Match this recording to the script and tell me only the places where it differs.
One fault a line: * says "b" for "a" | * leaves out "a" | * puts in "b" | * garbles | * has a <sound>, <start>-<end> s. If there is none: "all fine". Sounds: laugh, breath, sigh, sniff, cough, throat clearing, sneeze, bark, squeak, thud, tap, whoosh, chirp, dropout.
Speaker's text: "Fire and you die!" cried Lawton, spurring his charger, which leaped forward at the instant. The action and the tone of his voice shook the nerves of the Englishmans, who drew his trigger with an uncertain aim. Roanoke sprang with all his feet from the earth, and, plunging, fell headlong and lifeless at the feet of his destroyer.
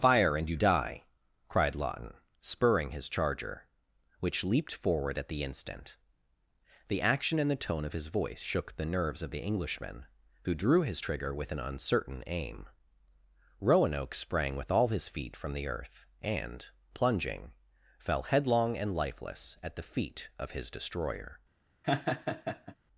* says "Englishman" for "Englishmans"
* has a laugh, 21.8-22.8 s